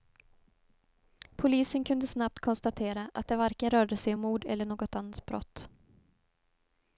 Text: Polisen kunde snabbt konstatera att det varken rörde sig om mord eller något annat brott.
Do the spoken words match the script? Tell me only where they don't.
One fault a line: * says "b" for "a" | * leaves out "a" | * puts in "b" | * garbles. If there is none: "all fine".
all fine